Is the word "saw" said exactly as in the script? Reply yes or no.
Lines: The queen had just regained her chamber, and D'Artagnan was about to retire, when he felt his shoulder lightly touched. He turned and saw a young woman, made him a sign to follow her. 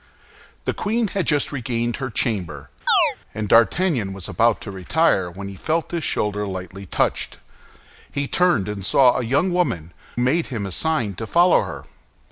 yes